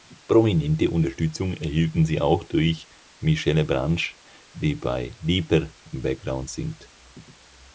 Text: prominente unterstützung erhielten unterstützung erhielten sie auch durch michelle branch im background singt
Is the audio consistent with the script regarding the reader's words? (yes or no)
no